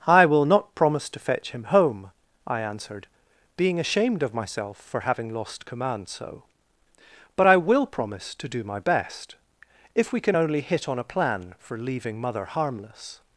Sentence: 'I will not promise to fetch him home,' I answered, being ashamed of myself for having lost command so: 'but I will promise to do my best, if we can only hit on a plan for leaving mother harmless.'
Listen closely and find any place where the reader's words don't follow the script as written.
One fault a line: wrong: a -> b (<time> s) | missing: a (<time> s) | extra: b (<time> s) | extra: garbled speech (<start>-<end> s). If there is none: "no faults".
no faults